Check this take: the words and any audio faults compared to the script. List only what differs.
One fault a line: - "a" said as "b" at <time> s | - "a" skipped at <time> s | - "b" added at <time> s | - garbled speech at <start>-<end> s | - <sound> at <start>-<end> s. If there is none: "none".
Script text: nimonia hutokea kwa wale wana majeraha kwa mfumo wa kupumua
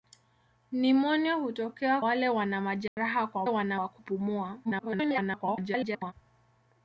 - "kwa" skipped at 2.0 s
- dropout at 2.9-3.0 s
- "mfumo" said as "wana" at 3.5 s
- garbled speech at 4.6-6.1 s